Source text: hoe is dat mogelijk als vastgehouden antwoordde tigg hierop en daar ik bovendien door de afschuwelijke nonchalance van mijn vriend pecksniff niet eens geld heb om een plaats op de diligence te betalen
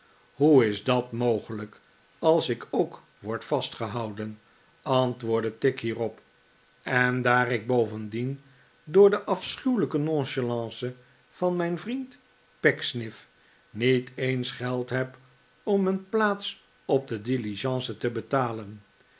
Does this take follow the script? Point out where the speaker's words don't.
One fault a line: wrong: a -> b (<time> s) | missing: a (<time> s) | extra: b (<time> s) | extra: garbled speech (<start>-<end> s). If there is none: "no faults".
extra: ik ook word (2.5 s)